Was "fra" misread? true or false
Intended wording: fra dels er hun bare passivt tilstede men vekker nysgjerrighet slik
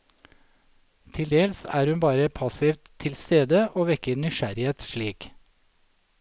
true